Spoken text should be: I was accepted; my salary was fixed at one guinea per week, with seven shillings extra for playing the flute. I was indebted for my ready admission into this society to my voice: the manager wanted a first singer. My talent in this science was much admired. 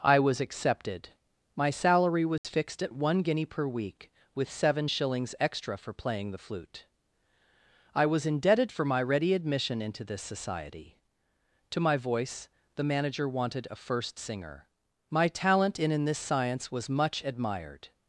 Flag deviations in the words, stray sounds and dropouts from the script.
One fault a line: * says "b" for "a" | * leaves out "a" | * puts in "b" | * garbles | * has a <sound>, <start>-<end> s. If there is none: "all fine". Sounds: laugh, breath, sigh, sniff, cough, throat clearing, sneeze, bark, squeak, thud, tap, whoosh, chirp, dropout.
* has a dropout, 2.4-2.4 s
* puts in "in"